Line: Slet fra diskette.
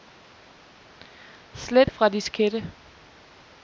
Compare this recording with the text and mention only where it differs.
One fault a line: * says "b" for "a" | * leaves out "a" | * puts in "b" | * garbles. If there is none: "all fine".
all fine